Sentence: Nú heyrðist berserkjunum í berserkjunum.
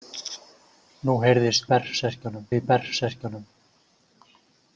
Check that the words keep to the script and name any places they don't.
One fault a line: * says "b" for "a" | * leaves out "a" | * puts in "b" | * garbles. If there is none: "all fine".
all fine